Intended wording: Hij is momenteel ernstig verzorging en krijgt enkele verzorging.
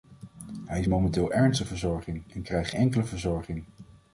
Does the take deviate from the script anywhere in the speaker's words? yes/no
no